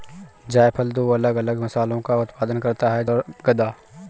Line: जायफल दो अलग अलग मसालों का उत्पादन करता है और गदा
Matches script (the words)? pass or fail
pass